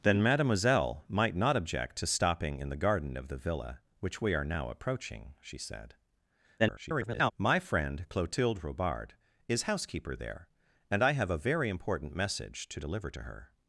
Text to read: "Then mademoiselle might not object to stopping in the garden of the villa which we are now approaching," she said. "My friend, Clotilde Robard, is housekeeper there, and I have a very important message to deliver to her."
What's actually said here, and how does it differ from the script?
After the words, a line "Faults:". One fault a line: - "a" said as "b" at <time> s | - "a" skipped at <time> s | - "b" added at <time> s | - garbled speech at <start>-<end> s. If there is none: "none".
"Then mademoiselle might not object to stopping in the garden of the villa which we are now approaching," she said. [garbled] "My friend, Clotilde Robard, is housekeeper there, and I have a very important message to deliver to her."
Faults:
- garbled speech at 6.6-7.3 s